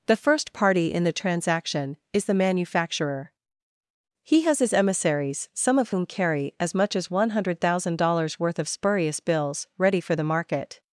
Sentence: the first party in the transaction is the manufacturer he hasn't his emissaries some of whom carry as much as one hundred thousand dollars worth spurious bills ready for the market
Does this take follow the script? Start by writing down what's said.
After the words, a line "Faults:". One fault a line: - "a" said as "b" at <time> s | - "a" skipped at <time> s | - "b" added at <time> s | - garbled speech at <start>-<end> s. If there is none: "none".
the first party in the transaction is the manufacturer he has his emissaries some of whom carry as much as one hundred thousand dollars worth of spurious bills ready for the market
Faults:
- "hasn't" said as "has" at 4.4 s
- "of" added at 8.6 s